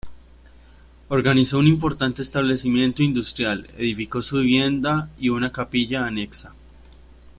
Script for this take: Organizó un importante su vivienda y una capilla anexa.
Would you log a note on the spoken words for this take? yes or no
yes